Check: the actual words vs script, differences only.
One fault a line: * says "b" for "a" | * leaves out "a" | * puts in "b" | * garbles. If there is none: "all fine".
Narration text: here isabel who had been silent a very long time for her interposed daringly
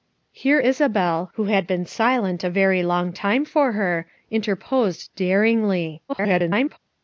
* garbles